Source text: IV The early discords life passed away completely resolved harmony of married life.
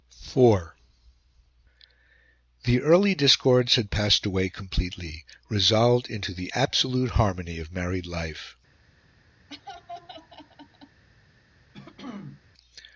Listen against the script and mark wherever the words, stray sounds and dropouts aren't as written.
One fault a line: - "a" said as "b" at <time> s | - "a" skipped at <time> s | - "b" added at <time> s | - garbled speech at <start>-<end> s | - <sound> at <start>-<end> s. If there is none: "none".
- "life" said as "had" at 3.8 s
- "into the absolute" added at 6.1 s
- laugh at 9.5-11.0 s
- throat clearing at 11.7-12.4 s